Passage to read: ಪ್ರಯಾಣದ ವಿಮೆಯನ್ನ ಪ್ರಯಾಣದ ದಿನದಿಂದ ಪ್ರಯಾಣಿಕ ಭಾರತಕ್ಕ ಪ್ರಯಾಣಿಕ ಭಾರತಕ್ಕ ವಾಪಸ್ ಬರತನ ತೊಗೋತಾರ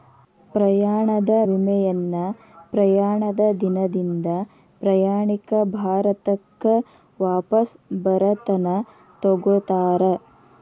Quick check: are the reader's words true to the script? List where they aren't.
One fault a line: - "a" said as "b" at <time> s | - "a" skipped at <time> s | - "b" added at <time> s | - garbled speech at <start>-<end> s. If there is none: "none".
- "ಪ್ರಯಾಣಿಕ ಭಾರತಕ್ಕ" skipped at 6.7 s